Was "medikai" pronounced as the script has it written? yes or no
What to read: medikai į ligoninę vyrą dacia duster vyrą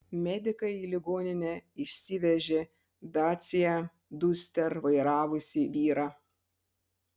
yes